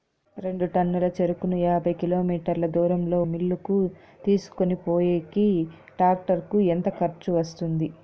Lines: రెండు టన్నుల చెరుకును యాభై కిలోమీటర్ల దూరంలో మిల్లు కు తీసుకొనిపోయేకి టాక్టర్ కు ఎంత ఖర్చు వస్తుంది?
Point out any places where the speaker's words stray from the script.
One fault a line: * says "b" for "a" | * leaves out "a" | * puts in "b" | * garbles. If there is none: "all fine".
all fine